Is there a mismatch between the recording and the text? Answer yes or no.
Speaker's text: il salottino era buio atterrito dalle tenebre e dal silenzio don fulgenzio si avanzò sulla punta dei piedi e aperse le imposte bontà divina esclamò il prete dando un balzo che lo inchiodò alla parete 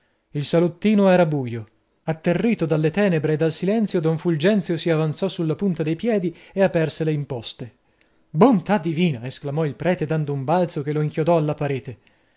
no